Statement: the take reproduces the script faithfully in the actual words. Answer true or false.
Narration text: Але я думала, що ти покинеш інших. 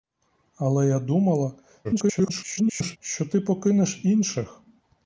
false